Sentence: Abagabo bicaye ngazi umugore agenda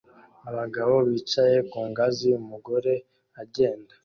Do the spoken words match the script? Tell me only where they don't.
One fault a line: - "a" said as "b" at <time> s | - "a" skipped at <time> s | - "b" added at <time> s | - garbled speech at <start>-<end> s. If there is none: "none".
- "ku" added at 1.7 s